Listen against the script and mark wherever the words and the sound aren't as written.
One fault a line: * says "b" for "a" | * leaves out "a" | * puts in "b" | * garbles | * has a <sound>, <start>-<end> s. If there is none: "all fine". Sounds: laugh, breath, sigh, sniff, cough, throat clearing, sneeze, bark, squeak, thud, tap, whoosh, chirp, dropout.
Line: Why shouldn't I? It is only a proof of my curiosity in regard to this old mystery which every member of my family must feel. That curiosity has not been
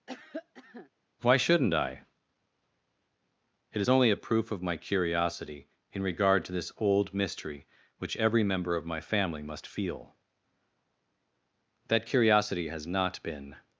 * has a cough, 0.1-0.9 s